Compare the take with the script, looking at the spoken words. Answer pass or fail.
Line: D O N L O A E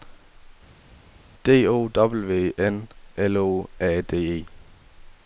fail